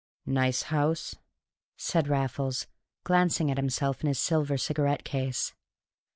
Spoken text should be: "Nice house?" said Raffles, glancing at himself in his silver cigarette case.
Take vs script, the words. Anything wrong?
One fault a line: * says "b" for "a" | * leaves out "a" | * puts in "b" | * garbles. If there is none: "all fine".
all fine